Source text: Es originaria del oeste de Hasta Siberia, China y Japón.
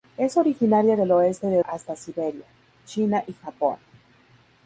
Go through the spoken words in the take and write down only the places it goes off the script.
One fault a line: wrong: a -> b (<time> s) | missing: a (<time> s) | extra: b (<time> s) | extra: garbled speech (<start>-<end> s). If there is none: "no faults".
no faults